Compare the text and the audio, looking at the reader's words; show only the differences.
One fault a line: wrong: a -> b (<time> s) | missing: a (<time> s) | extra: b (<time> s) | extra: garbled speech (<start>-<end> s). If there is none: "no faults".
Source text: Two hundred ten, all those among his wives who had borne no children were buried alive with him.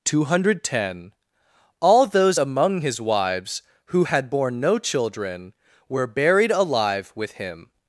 no faults